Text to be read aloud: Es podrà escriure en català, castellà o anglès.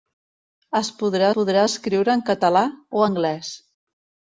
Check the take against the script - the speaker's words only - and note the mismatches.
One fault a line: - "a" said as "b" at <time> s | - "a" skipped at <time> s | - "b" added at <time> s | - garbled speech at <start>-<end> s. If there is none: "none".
- "podrà" added at 1.4 s
- "castellà" skipped at 2.6 s